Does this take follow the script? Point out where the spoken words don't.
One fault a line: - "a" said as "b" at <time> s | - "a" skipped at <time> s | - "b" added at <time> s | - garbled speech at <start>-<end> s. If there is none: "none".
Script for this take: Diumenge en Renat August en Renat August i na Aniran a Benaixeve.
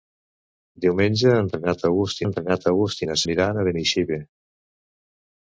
none